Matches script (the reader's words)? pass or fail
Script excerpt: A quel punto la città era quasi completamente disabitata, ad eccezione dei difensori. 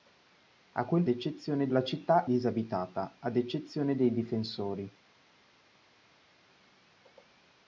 fail